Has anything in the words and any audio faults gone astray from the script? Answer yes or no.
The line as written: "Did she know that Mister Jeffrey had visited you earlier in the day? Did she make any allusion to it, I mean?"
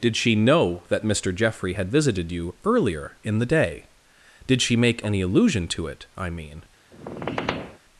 yes